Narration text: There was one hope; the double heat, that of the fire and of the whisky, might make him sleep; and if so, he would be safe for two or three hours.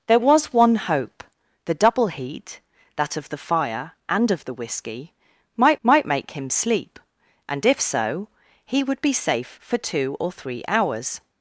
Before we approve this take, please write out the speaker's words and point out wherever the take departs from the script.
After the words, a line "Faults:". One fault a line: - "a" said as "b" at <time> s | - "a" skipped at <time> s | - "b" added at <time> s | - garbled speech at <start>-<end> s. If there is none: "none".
There was one hope; the double heat, that of the fire and of the whisky, might might make him sleep; and if so, he would be safe for two or three hours.
Faults:
- "might" added at 5.8 s